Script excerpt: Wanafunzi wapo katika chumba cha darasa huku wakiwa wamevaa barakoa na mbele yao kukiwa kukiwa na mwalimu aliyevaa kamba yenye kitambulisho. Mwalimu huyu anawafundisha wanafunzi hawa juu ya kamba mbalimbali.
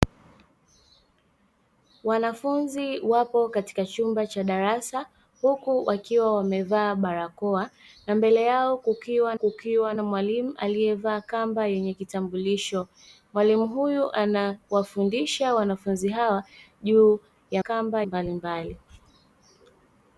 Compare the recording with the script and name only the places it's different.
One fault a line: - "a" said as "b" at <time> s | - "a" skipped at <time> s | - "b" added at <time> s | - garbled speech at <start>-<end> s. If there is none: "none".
none